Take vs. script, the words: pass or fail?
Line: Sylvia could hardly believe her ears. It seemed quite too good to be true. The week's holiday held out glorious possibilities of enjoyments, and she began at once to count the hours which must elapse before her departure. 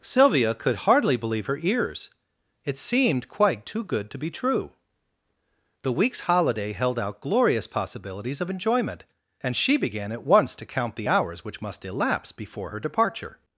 fail